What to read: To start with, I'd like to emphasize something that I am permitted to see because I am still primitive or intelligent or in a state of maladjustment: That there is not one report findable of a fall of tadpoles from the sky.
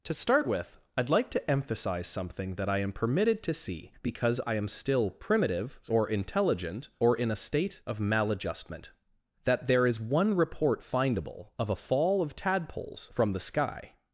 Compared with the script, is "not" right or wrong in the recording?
wrong